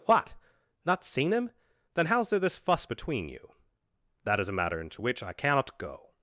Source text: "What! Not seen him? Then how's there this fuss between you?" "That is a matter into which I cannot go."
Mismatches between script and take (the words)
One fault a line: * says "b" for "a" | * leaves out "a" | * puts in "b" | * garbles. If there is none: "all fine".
all fine